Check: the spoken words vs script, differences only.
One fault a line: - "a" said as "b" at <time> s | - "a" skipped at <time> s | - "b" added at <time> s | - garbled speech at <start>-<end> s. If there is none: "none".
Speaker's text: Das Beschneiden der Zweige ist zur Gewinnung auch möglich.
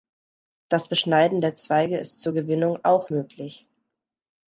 none